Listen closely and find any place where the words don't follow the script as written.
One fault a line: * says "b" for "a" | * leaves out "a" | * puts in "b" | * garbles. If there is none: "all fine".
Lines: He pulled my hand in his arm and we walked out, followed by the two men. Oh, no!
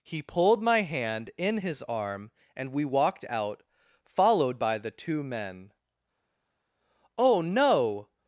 all fine